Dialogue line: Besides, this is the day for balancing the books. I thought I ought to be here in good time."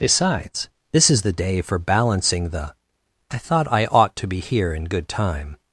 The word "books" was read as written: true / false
false